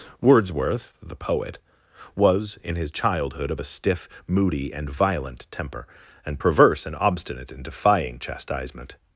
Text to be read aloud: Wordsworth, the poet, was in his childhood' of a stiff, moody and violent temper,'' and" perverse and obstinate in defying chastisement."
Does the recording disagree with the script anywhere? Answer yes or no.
no